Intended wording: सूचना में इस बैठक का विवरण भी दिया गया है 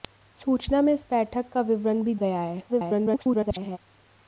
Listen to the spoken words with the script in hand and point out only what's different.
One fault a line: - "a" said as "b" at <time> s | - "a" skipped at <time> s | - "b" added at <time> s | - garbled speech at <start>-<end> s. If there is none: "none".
- "दिया" skipped at 2.1 s
- garbled speech at 2.7-3.8 s